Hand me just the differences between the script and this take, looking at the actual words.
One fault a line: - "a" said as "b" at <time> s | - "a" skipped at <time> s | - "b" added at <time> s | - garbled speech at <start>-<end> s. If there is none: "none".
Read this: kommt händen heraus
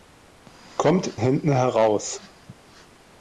none